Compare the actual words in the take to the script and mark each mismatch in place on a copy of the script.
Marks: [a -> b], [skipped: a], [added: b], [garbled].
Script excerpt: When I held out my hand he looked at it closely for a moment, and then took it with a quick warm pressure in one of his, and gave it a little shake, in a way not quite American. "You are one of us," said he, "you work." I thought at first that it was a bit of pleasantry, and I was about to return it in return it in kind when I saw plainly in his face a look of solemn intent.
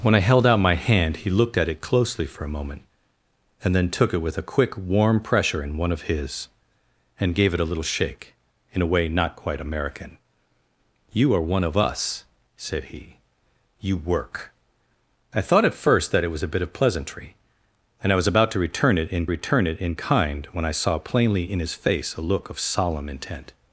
When I held out my hand he looked at it closely for a moment, and then took it with a quick warm pressure in one of his, and gave it a little shake, in a way not quite American. "You are one of us," said he, "you work." I thought at first that it was a bit of pleasantry, and I was about to return it in return it in kind when I saw plainly in his face a look of solemn intent.